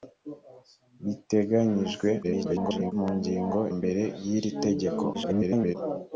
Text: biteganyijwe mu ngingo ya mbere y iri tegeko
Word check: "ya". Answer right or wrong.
wrong